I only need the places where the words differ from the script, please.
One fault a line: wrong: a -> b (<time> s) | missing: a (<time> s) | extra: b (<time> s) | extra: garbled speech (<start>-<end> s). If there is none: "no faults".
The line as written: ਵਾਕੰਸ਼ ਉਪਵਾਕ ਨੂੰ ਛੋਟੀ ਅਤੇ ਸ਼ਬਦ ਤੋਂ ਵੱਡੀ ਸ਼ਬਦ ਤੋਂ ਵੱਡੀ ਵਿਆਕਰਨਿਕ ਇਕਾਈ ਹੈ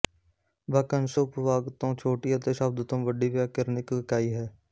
wrong: ਨੂੰ -> ਤੋਂ (1.7 s)
missing: ਸ਼ਬਦ ਤੋਂ ਵੱਡੀ (3.3 s)